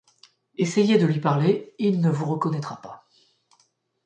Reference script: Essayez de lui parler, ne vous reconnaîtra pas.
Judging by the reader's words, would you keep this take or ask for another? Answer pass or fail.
fail